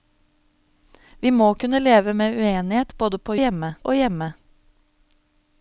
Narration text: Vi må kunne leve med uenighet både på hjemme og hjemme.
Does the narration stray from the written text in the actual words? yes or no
no